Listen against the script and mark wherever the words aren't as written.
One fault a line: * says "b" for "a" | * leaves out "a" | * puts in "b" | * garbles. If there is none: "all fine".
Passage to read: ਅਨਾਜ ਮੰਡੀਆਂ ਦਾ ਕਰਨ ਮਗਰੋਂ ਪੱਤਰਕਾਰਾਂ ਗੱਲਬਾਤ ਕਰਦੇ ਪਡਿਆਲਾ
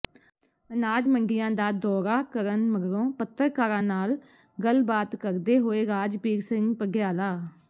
* puts in "ਦੌਰਾ"
* puts in "ਨਾਲ"
* puts in "ਹੋਏ ਰਾਜਬੀਰ ਸਿੰਘ"